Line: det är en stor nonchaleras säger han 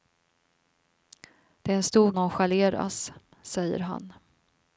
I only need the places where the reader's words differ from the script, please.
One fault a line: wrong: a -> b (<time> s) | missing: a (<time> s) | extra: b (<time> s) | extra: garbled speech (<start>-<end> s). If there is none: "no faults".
no faults